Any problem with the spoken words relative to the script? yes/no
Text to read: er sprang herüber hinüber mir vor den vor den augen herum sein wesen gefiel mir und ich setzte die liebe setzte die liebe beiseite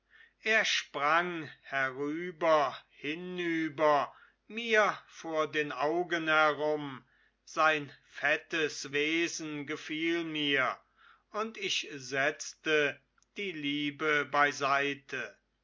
yes